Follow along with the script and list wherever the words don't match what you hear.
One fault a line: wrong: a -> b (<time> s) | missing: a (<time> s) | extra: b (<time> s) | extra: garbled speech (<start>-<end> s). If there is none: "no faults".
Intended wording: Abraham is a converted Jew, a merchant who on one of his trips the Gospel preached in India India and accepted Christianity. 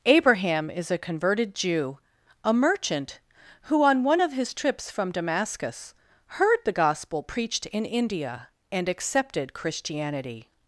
extra: from Damascus heard (4.9 s)
missing: India (8.5 s)